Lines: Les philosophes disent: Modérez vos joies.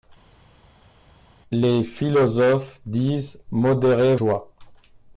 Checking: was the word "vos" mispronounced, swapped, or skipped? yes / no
yes